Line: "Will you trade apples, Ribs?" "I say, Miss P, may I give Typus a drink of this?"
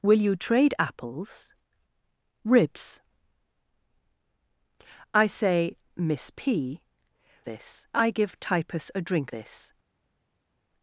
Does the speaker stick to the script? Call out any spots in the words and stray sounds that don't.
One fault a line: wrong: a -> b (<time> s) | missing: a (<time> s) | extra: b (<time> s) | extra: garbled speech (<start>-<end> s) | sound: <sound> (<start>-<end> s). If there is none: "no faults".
wrong: may -> this (7.4 s)
missing: of (9.3 s)